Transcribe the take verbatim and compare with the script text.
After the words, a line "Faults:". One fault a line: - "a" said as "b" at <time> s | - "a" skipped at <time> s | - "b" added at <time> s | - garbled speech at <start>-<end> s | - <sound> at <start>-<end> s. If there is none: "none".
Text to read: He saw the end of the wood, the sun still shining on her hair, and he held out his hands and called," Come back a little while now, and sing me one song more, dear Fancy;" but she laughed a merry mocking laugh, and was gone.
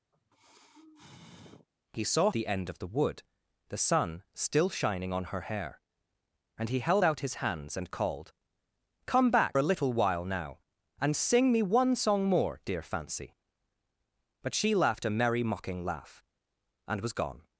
He saw the end of the wood, the sun still shining on her hair, and he held out his hands and called," Come back a little while now, and sing me one song more, dear Fancy;" but she laughed a merry mocking laugh, and was gone.
Faults:
- sigh at 0.1-1.7 s